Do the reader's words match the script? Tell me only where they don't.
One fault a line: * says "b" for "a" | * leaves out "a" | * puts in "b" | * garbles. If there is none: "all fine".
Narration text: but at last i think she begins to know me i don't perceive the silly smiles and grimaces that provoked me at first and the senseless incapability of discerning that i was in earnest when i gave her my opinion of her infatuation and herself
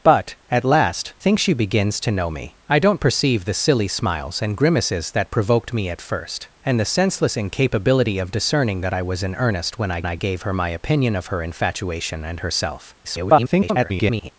* leaves out "i"
* puts in "i"
* garbles